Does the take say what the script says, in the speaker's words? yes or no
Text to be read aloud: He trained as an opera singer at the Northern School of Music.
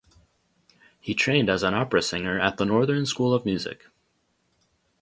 yes